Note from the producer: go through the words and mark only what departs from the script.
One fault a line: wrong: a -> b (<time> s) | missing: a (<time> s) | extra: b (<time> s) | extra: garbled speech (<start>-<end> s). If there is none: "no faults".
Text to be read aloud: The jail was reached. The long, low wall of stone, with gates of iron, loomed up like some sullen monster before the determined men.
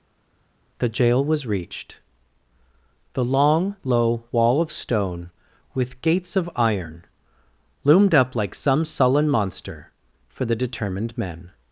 wrong: before -> for (10.3 s)